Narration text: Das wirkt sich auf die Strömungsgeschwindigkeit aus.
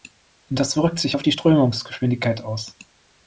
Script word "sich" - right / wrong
right